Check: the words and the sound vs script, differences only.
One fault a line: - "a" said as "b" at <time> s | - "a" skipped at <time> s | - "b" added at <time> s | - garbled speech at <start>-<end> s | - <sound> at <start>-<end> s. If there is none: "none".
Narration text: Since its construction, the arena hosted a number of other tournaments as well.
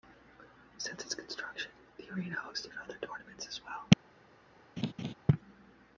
- "a number" skipped at 2.7 s
- laugh at 4.8-5.1 s